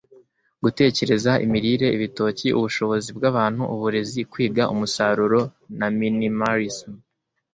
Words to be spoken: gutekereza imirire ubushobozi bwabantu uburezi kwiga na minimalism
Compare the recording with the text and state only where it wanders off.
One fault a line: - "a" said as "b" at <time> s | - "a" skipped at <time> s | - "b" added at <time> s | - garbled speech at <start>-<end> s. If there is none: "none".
- "ibitoki" added at 2.0 s
- "umusaruro" added at 4.7 s